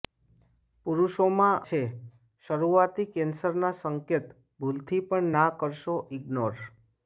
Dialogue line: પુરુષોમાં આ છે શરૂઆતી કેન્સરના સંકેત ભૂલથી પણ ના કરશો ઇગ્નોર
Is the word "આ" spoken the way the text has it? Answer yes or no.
no